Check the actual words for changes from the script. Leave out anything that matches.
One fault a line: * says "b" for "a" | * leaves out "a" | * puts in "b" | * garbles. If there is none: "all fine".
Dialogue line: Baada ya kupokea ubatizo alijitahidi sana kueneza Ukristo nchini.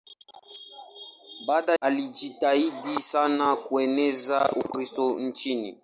* leaves out "ya kupokea ubatizo"